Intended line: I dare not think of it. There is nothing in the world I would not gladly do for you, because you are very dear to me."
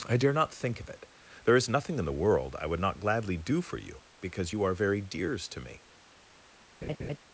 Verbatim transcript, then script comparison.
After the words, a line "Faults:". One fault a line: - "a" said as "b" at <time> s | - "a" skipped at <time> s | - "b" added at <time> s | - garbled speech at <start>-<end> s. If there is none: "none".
I dare not think of it. There is nothing in the world I would not gladly do for you, because you are very dears to me."
Faults:
- "dear" said as "dears" at 5.0 s